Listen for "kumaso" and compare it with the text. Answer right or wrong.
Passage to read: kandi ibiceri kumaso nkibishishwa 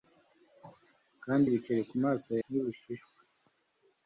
right